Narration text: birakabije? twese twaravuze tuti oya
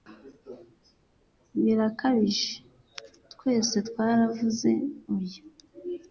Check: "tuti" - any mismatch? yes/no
yes